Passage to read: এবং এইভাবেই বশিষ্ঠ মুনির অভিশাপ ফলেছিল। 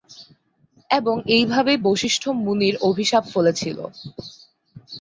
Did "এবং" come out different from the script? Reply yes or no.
no